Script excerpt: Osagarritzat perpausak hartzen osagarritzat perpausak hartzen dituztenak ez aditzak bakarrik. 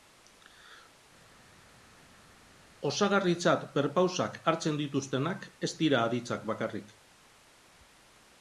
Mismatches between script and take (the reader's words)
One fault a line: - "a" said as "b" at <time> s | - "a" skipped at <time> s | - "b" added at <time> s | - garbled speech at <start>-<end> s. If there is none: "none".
- "osagarritzat perpausak hartzen" skipped at 4.8 s
- "dira" added at 5.8 s